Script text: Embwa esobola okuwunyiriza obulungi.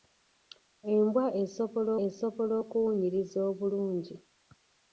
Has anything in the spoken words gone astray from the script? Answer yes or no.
yes